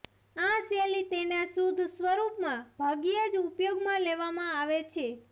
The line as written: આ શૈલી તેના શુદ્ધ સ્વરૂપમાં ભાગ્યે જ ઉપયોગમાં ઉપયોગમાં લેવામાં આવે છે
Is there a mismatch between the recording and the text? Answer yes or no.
yes